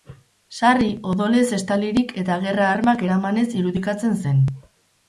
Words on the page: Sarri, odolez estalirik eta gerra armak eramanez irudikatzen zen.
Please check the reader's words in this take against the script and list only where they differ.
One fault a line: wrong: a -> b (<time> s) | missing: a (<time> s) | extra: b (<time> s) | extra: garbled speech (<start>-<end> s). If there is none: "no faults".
no faults